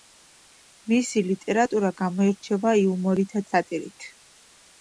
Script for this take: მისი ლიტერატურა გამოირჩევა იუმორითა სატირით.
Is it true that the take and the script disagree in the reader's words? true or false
false